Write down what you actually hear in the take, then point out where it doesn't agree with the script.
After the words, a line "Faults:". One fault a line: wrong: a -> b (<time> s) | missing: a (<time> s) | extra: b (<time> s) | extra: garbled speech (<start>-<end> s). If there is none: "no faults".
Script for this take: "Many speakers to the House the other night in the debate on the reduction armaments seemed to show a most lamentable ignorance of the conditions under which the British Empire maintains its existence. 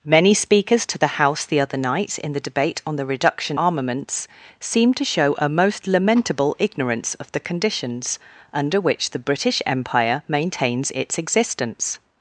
"Many speakers to the House the other night in the debate on the reduction armaments seemed to show a most lamentable ignorance of the conditions under which the British Empire maintains its existence.
Faults:
no faults